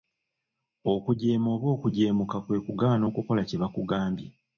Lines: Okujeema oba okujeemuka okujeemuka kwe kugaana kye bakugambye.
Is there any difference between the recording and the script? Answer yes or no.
yes